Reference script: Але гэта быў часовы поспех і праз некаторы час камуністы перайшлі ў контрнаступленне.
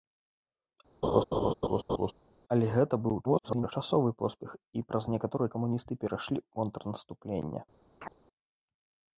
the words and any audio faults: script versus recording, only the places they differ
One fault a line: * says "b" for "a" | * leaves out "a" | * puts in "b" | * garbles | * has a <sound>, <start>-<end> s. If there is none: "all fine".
* has a laugh, 1.0-2.1 s
* garbles
* leaves out "час"
* has a chirp, 8.0-8.1 s